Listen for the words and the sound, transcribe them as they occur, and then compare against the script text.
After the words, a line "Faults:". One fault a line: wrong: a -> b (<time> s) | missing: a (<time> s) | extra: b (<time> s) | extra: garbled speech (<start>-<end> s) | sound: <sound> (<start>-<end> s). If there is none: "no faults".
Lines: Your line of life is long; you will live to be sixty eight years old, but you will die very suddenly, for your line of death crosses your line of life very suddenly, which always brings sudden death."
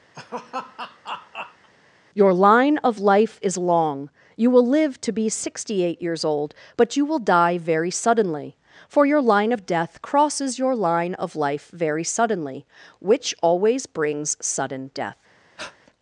Your line of life is long; you will live to be sixty eight years old, but you will die very suddenly, for your line of death crosses your line of life very suddenly, which always brings sudden death."
Faults:
sound: laugh (0.1-1.7 s)
sound: breath (15.6-15.8 s)